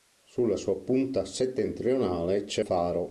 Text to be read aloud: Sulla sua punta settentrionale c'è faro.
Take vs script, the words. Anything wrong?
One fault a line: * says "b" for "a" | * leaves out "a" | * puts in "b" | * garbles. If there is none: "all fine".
all fine